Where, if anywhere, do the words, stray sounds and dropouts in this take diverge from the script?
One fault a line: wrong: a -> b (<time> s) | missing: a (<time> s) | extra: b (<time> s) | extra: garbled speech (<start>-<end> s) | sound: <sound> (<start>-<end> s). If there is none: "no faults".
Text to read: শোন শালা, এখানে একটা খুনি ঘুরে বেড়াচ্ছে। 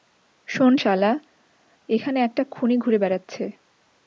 no faults